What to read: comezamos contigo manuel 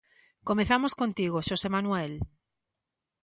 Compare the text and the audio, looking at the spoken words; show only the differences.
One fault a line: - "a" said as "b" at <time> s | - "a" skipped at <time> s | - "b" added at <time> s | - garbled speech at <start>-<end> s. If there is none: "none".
- "xosé" added at 1.5 s